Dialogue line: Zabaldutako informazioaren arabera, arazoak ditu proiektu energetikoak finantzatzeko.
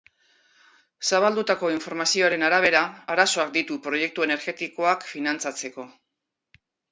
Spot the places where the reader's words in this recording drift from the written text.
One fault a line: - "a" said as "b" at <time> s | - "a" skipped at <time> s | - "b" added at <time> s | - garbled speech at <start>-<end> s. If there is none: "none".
none